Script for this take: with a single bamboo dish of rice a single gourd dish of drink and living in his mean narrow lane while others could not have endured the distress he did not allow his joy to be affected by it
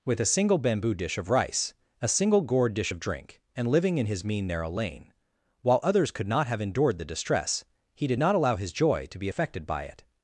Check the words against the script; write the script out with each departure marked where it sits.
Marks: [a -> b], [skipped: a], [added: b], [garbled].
with a single bamboo dish of rice a single gourd dish of drink and living in his mean narrow lane while others could not have endured the distress he did not allow his joy to be affected by it